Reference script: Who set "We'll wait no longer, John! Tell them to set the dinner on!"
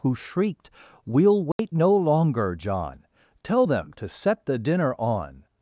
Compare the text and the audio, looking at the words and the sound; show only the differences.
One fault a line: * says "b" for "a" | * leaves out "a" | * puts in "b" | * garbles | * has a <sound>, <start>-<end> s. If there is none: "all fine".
* says "shrieked" for "set"
* has a dropout, 1.5-1.6 s